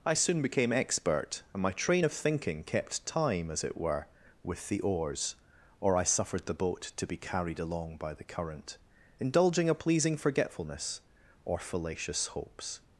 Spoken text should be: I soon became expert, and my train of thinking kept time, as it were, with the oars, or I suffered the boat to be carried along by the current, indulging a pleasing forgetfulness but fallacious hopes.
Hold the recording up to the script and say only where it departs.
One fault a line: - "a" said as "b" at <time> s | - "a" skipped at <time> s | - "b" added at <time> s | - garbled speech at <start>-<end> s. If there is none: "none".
- "but" said as "or" at 11.5 s